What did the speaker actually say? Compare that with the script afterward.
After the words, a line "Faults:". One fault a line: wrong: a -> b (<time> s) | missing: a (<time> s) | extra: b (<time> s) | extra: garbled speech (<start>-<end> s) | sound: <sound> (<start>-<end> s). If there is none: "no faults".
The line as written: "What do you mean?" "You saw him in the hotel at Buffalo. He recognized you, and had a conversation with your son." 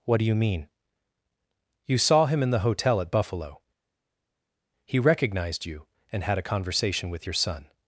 "What do you mean?" "You saw him in the hotel at Buffalo. He recognized you, and had a conversation with your son."
Faults:
no faults